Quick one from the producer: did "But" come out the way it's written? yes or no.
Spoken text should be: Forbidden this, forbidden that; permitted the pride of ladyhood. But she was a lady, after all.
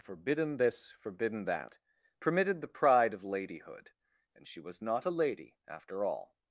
no